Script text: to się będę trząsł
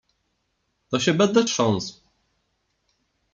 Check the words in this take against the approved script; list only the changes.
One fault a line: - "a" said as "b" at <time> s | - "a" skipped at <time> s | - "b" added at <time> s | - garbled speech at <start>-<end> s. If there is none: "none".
none